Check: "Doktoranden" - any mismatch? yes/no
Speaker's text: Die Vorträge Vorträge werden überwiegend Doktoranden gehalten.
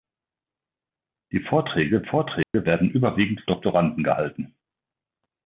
no